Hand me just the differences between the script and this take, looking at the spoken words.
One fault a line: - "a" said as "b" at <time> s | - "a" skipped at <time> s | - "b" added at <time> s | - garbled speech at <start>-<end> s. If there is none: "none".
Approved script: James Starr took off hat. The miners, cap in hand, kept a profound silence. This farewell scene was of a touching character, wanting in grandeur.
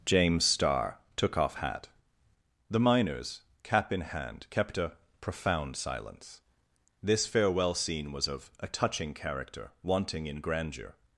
none